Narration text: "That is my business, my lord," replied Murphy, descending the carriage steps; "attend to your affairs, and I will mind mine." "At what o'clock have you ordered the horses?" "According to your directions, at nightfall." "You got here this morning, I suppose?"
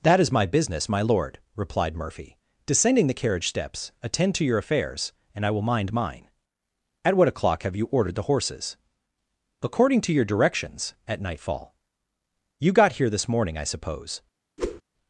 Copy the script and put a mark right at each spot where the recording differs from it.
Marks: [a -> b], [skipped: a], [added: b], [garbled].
"That is my business, my lord," replied Murphy, descending the carriage steps; "attend to your affairs, and I will mind mine." "At what o'clock have you ordered the horses?" "According to your directions, at nightfall." "You got here this morning, I suppose?"